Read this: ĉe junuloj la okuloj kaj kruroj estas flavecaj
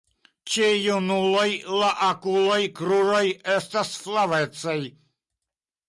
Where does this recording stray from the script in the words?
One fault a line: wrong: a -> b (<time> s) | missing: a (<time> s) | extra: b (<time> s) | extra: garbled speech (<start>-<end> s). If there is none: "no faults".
missing: kaj (2.6 s)